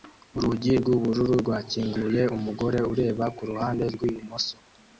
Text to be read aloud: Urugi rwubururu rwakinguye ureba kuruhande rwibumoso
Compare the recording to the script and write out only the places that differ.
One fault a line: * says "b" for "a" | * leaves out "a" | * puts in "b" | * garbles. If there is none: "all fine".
* puts in "umugore"